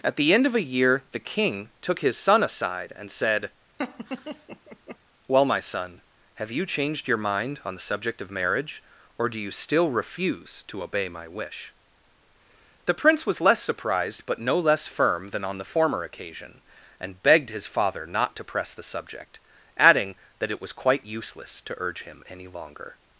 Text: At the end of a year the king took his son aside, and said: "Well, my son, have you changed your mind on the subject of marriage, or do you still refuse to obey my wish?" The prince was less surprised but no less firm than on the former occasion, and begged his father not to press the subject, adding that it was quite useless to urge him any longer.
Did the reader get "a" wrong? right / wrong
right